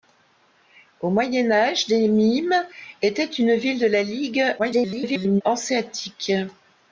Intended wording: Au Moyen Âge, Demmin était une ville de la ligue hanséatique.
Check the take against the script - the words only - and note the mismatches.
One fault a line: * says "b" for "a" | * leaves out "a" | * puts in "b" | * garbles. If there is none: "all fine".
* garbles